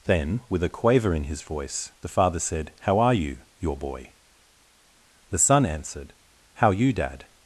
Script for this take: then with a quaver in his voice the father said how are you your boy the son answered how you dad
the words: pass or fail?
pass